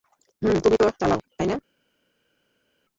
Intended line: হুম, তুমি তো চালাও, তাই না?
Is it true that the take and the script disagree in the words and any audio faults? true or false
false